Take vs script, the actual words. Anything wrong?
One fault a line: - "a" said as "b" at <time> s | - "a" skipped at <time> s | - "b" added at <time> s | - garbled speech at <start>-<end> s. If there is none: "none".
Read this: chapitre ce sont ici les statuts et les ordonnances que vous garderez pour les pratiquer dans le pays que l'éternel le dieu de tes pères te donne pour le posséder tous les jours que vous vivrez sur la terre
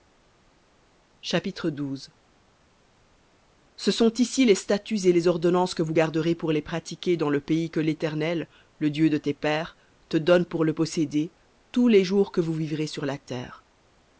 none